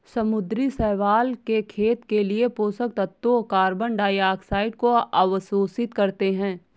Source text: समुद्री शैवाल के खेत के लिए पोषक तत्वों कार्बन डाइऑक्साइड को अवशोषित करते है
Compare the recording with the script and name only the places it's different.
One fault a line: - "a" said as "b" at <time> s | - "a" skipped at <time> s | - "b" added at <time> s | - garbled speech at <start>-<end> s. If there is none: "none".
none